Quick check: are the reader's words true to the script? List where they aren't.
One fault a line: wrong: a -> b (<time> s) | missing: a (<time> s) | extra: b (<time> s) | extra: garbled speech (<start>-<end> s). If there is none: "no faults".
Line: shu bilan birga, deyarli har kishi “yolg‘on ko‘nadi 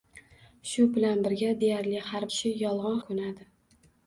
no faults